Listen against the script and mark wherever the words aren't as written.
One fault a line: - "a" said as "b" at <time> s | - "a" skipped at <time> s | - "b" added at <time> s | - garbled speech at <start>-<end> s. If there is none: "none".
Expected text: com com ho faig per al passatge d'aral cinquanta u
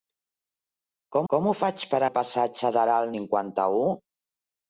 none